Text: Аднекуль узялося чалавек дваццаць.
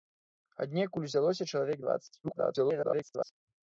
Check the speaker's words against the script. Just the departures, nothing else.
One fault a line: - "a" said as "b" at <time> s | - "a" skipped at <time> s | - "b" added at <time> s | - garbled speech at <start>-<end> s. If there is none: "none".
- garbled speech at 2.2-3.3 s